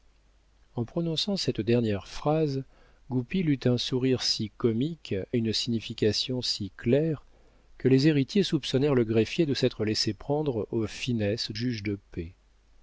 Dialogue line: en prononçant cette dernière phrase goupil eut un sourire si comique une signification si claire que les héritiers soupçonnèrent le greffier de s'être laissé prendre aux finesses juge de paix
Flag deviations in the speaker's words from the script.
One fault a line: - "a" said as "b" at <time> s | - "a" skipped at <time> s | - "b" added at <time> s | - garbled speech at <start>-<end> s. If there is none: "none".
none